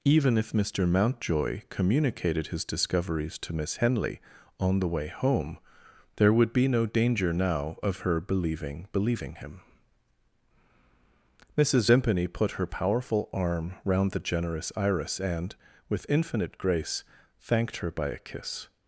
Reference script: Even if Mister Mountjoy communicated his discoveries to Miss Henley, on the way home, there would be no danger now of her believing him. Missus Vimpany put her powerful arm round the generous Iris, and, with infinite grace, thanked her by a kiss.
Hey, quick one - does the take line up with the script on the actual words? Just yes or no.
no